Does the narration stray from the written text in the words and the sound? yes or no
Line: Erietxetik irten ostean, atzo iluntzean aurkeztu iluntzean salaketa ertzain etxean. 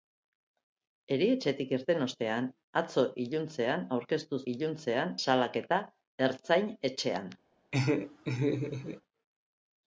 yes